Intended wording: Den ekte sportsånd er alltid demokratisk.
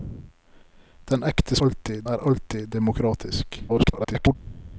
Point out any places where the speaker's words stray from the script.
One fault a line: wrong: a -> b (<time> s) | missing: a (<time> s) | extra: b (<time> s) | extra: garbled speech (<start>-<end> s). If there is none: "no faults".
wrong: sportsånd -> alltid (1.6 s)
extra: garbled speech (3.7-4.4 s)